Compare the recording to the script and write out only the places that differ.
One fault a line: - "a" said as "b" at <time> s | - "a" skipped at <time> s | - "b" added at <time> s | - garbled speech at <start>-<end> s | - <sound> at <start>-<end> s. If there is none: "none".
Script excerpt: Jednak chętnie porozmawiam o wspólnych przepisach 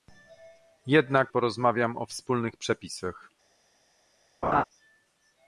- "chętnie" skipped at 1.3 s
- laugh at 4.4-4.6 s